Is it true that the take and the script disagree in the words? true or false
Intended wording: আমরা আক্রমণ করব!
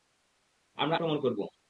false